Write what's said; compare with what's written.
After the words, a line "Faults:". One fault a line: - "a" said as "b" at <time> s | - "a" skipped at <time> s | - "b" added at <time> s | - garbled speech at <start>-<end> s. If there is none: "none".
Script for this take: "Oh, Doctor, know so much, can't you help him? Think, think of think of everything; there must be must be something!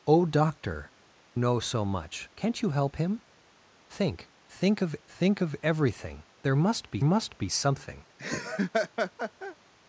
"Oh, Doctor, know so much, can't you help him? Think, think of think of everything; there must be must be something!
Faults:
none